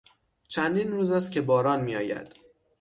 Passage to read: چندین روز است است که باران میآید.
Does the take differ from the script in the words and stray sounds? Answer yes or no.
yes